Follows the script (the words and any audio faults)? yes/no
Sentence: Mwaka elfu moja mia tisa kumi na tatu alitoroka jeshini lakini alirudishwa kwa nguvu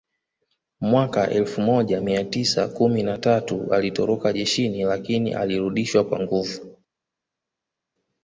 yes